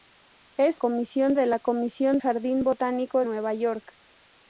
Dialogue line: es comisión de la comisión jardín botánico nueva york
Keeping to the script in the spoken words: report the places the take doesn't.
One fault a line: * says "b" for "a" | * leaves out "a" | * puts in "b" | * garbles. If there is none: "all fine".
all fine